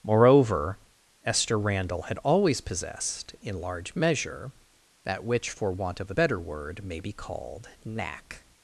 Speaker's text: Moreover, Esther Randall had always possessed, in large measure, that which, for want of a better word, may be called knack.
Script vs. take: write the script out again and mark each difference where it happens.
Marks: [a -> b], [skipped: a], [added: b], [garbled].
Moreover, Esther Randall had always possessed, in large measure, that which, for want of a better word, may be called knack.